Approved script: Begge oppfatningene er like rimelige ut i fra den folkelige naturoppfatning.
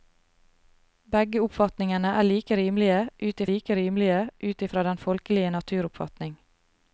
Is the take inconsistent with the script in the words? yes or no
yes